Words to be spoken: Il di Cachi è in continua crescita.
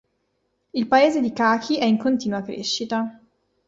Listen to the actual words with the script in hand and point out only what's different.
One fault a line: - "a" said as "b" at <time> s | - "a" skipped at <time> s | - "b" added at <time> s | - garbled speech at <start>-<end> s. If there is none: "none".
- "paese" added at 0.9 s